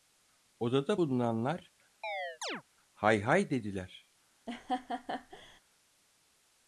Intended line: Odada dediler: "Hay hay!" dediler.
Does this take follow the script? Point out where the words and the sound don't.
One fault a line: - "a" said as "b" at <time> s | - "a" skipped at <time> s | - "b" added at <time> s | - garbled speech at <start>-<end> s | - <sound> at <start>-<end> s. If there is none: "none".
- "dediler" said as "bulunanlar" at 1.0 s
- chirp at 2.0-2.6 s
- laugh at 4.5-5.6 s